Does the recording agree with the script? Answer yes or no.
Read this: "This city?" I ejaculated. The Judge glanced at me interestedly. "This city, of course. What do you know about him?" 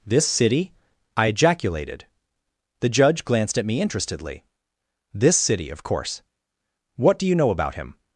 yes